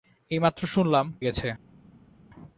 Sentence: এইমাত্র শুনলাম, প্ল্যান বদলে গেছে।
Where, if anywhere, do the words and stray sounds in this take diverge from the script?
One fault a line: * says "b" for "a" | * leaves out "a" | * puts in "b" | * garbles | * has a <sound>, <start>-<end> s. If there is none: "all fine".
* leaves out "প্ল্যান বদলে"